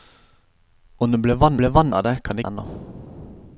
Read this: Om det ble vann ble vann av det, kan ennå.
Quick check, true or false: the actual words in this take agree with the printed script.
true